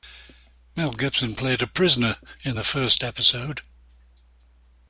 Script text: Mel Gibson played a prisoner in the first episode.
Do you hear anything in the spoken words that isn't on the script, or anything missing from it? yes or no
no